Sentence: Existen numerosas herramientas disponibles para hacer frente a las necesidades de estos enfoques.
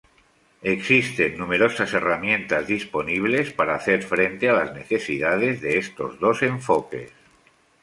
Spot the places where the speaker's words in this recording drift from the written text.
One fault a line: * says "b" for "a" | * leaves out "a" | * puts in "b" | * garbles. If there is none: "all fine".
* puts in "dos"